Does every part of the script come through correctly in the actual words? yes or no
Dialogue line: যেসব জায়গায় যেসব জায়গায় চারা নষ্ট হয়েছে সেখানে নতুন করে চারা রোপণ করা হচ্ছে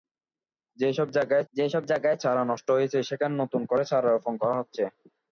yes